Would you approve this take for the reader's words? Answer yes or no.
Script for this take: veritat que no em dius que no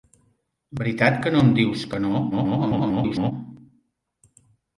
no